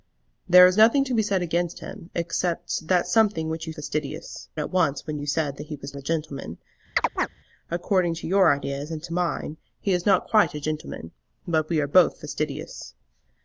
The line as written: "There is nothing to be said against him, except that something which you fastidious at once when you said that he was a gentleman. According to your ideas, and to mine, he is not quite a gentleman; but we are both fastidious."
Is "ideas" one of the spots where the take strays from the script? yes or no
no